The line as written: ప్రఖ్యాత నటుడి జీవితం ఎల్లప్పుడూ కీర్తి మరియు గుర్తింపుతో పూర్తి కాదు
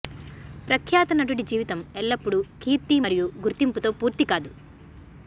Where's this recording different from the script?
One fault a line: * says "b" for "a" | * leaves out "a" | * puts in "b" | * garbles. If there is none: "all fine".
all fine